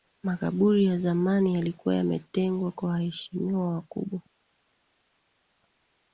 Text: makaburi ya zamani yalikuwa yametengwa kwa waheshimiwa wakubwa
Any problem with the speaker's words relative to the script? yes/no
no